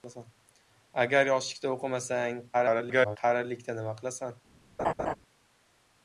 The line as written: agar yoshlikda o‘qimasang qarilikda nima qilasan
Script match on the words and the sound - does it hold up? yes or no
no